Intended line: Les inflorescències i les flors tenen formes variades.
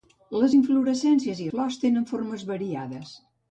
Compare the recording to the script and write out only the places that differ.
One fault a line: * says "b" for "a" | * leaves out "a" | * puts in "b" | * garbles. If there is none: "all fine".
* leaves out "les"